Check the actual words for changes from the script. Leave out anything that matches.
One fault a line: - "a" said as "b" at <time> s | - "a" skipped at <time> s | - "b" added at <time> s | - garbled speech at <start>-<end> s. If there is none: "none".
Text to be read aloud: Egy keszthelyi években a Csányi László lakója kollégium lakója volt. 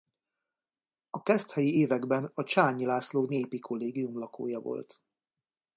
- "Egy" said as "A" at 1.1 s
- "lakója" said as "népi" at 3.3 s